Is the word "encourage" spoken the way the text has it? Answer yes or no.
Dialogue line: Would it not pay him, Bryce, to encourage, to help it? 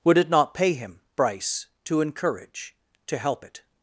yes